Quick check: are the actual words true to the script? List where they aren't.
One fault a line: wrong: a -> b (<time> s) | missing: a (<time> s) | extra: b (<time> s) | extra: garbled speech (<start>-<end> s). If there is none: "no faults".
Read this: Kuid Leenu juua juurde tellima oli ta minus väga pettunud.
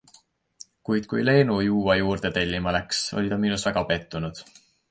extra: kui (1.1 s)
extra: läks (2.8 s)